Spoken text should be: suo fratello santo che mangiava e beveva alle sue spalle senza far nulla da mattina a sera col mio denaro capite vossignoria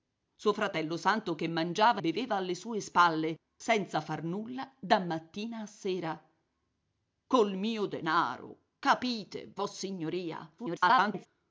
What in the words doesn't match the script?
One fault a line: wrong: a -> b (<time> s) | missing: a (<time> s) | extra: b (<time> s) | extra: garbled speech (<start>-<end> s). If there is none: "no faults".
missing: e (2.0 s)
extra: garbled speech (10.6-11.3 s)